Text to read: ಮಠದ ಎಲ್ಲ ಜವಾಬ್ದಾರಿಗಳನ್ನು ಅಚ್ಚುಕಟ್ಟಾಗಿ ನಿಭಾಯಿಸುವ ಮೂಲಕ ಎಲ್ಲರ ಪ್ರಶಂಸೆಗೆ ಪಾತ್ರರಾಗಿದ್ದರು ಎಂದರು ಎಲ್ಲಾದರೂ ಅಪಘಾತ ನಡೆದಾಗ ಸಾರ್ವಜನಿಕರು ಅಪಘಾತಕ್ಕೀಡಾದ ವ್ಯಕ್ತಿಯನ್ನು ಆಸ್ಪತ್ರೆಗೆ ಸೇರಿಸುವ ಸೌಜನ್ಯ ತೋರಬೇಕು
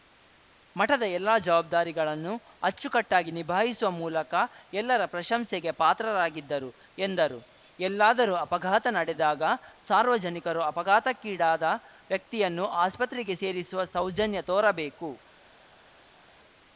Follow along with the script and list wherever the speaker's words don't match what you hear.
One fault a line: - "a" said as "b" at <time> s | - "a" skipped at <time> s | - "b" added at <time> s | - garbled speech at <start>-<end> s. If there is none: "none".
none